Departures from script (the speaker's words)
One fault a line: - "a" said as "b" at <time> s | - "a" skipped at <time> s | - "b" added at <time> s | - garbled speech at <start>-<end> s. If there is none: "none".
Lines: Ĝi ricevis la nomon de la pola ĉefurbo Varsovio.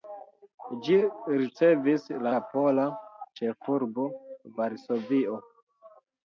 - "nomon de" skipped at 2.3 s